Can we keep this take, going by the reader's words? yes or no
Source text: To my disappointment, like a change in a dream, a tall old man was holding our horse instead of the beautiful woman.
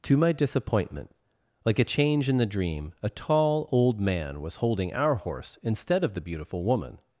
no